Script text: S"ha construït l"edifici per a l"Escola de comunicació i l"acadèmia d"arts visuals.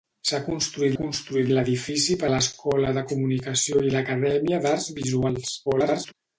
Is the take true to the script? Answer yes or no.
no